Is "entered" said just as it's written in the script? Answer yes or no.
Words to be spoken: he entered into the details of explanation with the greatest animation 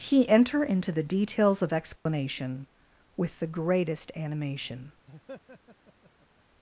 no